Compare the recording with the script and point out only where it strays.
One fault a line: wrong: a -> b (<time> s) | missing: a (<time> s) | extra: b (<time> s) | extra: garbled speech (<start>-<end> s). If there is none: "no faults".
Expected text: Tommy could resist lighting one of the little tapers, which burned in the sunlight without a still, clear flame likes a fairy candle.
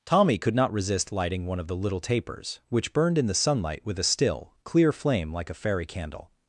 extra: not (0.6 s)
wrong: without -> with (3.8 s)
wrong: likes -> like (5.3 s)